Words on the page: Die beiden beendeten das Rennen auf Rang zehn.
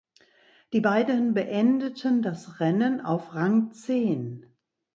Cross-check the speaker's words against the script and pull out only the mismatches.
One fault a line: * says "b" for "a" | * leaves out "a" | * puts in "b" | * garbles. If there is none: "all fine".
all fine